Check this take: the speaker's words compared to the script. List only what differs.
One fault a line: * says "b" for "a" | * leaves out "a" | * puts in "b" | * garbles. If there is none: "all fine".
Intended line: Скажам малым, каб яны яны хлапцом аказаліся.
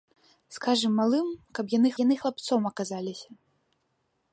all fine